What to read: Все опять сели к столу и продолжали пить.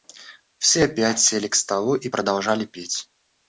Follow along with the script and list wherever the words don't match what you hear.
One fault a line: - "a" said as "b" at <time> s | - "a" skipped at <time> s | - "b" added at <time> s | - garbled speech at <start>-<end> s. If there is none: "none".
none